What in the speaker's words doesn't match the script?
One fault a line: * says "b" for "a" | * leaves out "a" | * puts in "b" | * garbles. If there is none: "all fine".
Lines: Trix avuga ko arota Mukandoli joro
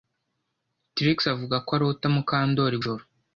all fine